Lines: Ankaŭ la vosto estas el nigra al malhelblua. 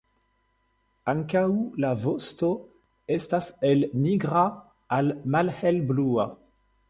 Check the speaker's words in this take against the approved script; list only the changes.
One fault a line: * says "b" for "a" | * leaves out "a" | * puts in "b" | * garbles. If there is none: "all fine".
all fine